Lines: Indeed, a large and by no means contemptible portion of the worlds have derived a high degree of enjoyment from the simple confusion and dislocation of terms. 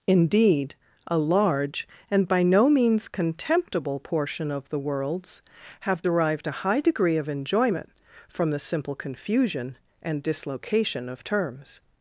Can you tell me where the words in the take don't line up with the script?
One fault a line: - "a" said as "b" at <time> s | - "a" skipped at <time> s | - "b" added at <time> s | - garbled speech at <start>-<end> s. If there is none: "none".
none